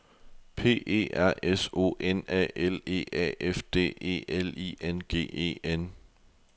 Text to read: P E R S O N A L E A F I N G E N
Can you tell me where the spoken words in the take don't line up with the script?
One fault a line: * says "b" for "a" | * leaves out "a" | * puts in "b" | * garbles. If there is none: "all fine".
* puts in "D E L"